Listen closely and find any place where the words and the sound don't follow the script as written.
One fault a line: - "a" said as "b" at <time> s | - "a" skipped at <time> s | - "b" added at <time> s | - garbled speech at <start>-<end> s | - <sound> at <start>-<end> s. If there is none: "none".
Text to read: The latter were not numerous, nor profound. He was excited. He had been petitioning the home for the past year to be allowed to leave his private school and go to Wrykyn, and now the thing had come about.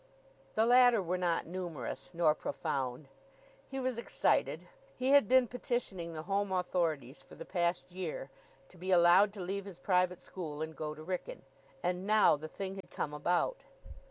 - "authorities" added at 6.5 s
- dropout at 12.8-12.8 s